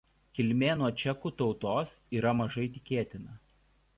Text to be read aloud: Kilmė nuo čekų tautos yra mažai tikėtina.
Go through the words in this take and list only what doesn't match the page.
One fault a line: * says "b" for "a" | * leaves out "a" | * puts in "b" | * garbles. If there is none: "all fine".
all fine